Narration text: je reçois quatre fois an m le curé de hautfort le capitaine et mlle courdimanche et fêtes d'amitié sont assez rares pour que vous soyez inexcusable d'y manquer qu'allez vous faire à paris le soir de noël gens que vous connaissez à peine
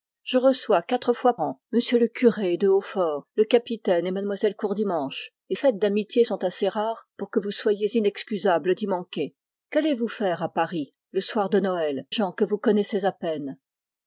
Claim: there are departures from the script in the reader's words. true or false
false